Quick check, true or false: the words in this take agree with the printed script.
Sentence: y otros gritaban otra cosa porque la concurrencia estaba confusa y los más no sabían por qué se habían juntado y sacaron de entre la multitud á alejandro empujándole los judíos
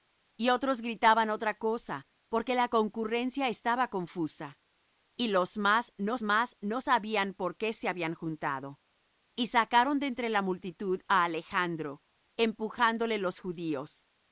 false